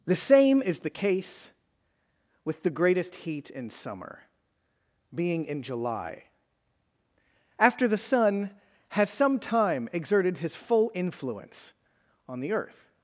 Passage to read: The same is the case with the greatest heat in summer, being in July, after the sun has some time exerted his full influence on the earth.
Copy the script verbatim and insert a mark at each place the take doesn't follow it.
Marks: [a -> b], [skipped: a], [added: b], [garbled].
The same is the case with the greatest heat in summer, being in July, after the sun has some time exerted his full influence on the earth.